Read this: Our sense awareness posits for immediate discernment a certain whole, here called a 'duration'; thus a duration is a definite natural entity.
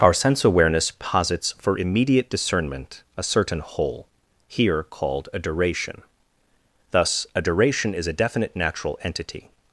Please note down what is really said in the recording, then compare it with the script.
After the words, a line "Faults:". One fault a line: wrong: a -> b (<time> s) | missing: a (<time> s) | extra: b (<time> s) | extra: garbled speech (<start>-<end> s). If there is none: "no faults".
Our sense awareness posits for immediate discernment a certain whole, here called a 'duration'; thus a duration is a definite natural entity.
Faults:
no faults